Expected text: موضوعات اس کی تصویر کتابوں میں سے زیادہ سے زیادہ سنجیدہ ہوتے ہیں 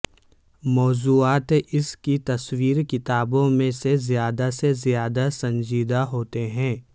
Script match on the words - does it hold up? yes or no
yes